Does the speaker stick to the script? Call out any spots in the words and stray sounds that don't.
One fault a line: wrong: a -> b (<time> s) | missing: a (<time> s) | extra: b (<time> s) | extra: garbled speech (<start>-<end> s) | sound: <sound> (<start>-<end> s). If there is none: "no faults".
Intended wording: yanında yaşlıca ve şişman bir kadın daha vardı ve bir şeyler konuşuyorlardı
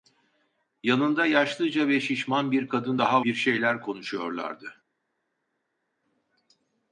missing: vardı ve (3.2 s)